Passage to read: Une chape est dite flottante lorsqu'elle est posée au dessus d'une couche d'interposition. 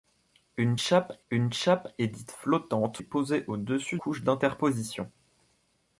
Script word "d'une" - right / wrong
wrong